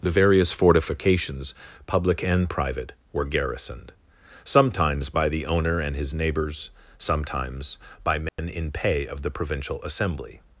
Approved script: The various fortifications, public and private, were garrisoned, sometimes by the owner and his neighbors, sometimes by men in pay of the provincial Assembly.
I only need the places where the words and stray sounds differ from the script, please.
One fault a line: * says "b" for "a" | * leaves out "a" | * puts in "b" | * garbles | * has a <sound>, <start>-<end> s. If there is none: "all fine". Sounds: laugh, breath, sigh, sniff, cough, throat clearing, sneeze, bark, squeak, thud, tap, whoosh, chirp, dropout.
* has a dropout, 8.3-8.4 s